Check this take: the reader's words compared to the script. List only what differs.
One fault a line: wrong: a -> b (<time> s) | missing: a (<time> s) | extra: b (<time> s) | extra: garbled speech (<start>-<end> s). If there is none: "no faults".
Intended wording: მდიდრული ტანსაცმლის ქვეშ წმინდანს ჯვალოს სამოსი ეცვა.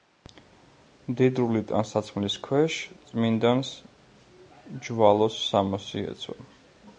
no faults